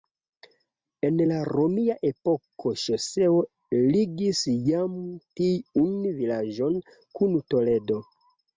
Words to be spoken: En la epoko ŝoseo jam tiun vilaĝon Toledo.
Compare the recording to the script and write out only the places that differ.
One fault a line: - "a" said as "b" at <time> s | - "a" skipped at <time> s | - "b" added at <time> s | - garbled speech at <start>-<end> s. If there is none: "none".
- "romia" added at 1.5 s
- "ligis" added at 4.0 s
- "kun" added at 7.2 s